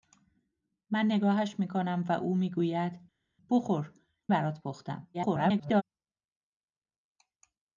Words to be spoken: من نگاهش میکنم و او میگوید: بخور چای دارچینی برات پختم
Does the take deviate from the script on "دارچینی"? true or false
true